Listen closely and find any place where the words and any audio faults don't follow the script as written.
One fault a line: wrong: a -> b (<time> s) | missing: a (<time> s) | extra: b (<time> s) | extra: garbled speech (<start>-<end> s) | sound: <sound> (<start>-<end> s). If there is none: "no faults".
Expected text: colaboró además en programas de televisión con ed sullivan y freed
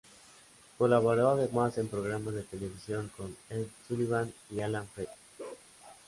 extra: alan (4.6 s)
sound: bark (5.4-5.7 s)